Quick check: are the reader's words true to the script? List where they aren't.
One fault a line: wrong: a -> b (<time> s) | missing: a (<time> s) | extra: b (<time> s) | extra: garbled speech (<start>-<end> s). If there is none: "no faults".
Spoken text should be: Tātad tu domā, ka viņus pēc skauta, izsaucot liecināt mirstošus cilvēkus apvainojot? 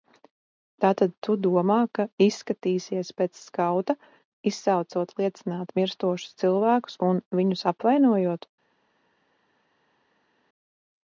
wrong: viņus -> izskatīsies (2.3 s)
extra: un viņus (7.1 s)